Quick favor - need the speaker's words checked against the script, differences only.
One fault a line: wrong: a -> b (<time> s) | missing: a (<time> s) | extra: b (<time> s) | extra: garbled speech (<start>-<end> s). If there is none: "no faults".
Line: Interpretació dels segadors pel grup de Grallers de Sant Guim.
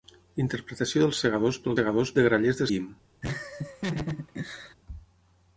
wrong: grup -> segadors (1.8 s)
missing: Sant (2.7 s)